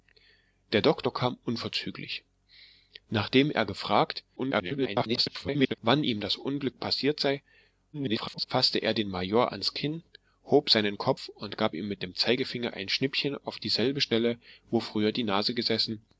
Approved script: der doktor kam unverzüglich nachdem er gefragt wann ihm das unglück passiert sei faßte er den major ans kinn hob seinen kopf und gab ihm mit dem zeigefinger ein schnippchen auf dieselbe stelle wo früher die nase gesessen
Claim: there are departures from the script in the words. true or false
true